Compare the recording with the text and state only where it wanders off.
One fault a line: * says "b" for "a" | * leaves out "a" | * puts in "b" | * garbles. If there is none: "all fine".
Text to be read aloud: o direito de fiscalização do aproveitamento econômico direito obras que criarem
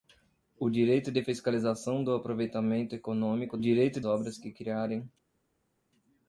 all fine